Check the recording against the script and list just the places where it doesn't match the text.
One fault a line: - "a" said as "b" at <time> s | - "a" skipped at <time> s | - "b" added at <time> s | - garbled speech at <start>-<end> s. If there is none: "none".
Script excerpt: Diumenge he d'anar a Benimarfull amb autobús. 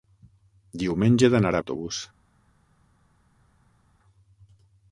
- "Benimarfull amb" skipped at 1.6 s